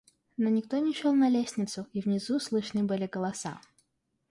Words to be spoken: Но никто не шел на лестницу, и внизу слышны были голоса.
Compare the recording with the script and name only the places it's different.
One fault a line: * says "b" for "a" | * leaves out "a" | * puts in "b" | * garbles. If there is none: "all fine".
all fine